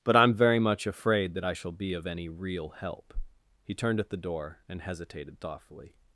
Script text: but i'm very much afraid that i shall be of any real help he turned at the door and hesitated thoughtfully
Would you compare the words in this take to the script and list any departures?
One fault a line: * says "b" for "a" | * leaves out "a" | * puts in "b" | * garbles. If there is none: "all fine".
all fine